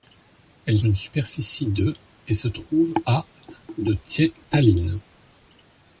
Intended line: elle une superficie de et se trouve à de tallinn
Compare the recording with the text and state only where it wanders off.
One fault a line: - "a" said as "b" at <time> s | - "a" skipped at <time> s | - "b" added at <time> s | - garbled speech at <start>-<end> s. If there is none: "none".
none